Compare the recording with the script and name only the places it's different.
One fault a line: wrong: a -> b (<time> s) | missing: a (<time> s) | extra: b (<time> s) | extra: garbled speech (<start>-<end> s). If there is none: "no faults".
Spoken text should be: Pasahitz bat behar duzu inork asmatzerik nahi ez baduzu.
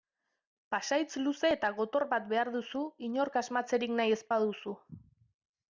extra: luze eta gotor (1.2 s)